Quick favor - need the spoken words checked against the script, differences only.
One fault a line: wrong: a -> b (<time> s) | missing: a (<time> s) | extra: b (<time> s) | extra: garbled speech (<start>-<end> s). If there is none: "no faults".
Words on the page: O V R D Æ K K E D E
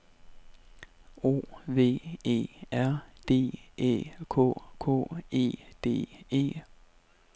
extra: E (2.2 s)